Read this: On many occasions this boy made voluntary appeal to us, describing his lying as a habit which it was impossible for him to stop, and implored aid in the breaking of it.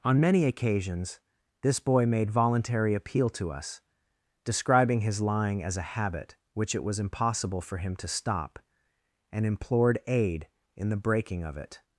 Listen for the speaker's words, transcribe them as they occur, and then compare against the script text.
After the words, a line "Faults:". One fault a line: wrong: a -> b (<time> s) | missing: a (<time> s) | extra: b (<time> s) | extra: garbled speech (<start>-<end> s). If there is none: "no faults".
On many occasions this boy made voluntary appeal to us, describing his lying as a habit which it was impossible for him to stop, and implored aid in the breaking of it.
Faults:
no faults